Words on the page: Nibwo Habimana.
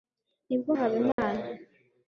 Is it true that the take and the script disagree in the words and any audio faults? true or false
true